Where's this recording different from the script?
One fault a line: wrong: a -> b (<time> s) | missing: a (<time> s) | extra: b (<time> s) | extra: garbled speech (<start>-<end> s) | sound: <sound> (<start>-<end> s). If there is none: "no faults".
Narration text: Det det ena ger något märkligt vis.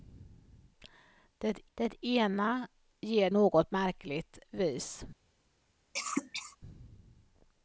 sound: cough (5.9-6.6 s)